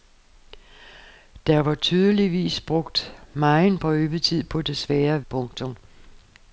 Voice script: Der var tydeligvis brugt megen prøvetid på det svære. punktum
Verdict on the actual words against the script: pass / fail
pass